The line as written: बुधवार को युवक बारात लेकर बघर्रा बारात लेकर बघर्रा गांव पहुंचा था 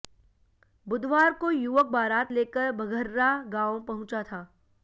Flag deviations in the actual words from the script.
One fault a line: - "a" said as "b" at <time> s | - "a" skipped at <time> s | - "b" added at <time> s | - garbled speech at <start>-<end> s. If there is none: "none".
- "बारात लेकर बघर्रा" skipped at 3.3 s